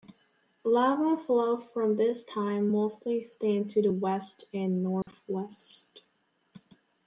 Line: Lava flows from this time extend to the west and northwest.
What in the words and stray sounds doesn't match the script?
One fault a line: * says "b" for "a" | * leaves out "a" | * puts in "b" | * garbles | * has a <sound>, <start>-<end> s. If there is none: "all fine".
* puts in "mostly"
* has a dropout, 5.0-5.1 s